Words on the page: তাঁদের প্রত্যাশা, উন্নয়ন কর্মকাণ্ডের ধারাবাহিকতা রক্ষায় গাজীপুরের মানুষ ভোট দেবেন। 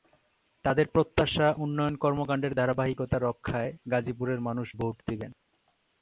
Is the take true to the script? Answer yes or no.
yes